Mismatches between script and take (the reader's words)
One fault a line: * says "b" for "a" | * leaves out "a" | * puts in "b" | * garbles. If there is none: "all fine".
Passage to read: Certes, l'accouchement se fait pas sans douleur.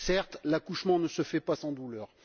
* puts in "ne"